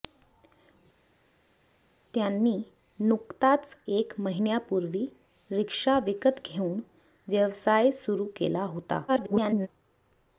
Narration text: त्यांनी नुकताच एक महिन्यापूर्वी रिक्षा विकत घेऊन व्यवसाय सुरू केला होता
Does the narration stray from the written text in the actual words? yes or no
yes